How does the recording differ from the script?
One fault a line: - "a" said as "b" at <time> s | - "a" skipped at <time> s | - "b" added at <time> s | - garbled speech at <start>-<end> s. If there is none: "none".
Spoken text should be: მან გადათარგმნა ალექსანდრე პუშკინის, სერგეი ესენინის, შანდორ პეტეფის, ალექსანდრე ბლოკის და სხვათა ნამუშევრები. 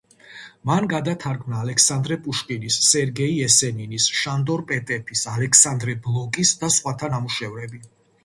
none